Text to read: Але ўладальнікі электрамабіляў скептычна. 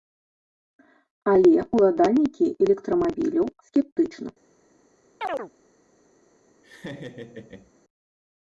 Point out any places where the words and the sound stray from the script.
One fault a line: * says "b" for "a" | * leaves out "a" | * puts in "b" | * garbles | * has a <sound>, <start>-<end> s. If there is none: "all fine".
* has a chirp, 5.2-5.5 s
* has a laugh, 6.6-7.7 s